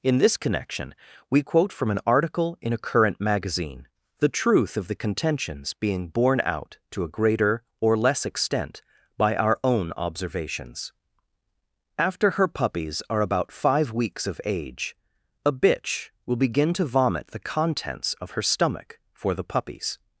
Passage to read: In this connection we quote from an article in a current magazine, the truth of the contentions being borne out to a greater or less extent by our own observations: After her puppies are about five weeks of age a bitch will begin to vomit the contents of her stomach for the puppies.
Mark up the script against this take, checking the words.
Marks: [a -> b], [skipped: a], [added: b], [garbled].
In this connection we quote from an article in a current magazine, the truth of the contentions being borne out to a greater or less extent by our own observations: After her puppies are about five weeks of age a bitch will begin to vomit the contents of her stomach for the puppies.